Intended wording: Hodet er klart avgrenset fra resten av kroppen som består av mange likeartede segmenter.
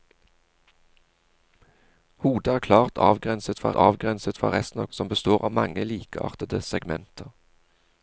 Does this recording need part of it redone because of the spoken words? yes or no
yes